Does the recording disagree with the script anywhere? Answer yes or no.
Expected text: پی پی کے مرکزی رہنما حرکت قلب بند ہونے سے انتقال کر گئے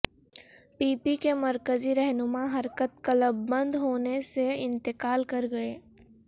no